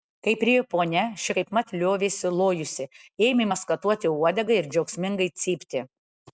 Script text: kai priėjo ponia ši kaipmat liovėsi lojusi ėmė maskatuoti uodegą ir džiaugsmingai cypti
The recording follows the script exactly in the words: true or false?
true